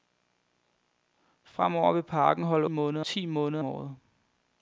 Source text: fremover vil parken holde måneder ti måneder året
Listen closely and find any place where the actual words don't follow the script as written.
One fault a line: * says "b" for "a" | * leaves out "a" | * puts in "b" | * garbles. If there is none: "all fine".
all fine